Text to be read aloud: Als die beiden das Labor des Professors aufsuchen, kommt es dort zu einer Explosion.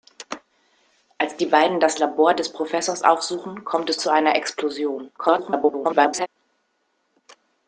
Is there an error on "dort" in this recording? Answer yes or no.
yes